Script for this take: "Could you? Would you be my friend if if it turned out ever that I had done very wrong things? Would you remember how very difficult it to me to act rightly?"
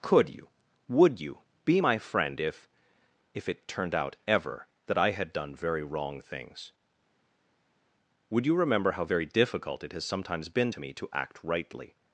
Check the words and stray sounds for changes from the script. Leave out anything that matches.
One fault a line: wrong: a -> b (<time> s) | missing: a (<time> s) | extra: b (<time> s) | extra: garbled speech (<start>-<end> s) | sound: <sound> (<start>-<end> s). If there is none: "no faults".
extra: has sometimes been (9.9 s)